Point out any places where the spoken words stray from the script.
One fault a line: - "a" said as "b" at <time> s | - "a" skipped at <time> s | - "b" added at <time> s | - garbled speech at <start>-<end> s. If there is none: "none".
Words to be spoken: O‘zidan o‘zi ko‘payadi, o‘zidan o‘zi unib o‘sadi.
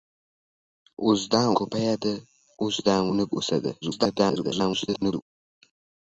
- "o‘zi" skipped at 1.5 s
- "o‘zi" skipped at 3.1 s
- garbled speech at 3.8-5.2 s